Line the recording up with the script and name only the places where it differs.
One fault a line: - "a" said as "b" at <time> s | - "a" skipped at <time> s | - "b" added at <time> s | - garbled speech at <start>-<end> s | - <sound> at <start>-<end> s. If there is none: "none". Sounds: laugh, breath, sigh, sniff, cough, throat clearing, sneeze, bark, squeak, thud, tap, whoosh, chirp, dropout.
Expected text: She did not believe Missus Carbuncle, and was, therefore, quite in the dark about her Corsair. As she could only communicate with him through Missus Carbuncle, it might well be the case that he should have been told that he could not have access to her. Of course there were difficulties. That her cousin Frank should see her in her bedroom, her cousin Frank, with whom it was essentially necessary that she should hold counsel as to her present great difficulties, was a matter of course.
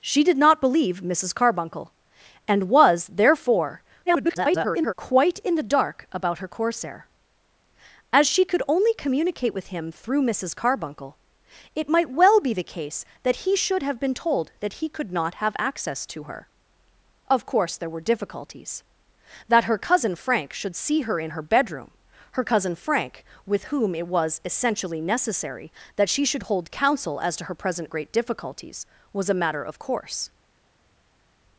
- garbled speech at 4.1-4.9 s